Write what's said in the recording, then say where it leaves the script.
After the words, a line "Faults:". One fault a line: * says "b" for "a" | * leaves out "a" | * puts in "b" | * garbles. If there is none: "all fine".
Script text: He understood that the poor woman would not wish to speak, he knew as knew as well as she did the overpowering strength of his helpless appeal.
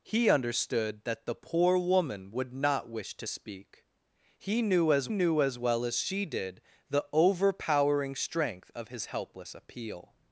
He understood that the poor woman would not wish to speak, he knew as knew as well as she did the overpowering strength of his helpless appeal.
Faults:
all fine